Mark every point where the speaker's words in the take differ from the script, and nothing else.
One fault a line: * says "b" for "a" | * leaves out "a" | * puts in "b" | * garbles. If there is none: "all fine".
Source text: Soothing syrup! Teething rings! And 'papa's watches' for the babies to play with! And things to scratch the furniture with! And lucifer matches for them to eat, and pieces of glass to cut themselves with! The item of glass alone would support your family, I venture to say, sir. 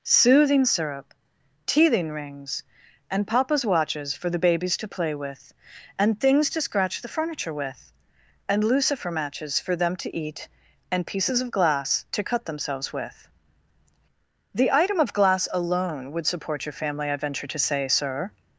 all fine